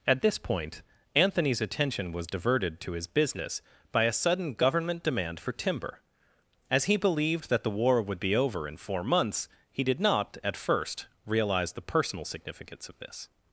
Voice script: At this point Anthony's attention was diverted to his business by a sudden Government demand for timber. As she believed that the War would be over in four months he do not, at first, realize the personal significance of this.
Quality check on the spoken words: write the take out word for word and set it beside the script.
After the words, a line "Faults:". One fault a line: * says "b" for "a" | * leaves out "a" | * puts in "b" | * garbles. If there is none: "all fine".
At this point Anthony's attention was diverted to his business by a sudden Government demand for timber. As he believed that the War would be over in four months he did not, at first, realize the personal significance of this.
Faults:
* says "he" for "she"
* says "did" for "do"